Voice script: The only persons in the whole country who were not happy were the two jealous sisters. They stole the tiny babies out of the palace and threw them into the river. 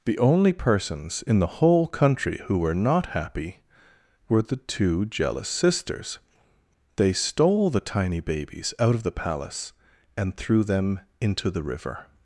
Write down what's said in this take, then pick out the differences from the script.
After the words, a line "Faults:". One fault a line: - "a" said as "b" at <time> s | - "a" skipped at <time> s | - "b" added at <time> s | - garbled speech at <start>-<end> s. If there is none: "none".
The only persons in the whole country who were not happy were the two jealous sisters. They stole the tiny babies out of the palace and threw them into the river.
Faults:
none